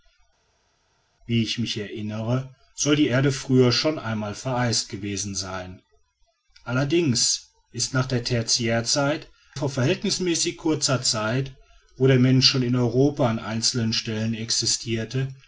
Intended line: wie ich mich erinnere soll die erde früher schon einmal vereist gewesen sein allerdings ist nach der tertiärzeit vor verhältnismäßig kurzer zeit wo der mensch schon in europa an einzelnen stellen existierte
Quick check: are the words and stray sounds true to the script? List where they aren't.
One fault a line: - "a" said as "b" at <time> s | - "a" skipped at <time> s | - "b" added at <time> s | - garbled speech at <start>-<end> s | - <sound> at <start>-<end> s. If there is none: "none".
none